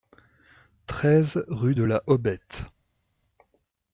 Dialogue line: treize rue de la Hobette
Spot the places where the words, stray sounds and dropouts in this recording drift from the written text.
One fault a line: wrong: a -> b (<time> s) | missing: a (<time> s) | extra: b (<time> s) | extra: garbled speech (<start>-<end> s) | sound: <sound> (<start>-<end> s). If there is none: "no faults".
no faults